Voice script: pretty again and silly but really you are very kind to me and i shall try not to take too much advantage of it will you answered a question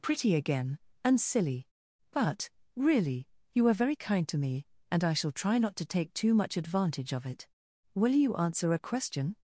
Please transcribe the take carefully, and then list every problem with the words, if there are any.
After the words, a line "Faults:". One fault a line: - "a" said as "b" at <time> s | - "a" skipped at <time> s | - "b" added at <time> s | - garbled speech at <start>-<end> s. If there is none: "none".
pretty again and silly but really you are very kind to me and i shall try not to take too much advantage of it will you answer a question
Faults:
- "answered" said as "answer" at 8.3 s